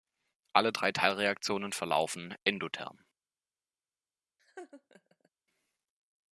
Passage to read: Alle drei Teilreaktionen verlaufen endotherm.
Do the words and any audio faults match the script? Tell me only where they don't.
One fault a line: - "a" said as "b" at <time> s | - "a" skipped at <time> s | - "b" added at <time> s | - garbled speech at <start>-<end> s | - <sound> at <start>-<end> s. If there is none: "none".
- laugh at 4.4-5.3 s